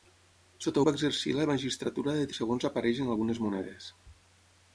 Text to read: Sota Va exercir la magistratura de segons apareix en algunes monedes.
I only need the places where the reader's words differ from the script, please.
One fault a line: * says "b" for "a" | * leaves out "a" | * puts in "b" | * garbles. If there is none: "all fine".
all fine